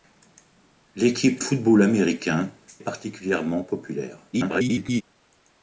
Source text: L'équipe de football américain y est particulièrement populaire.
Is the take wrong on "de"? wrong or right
wrong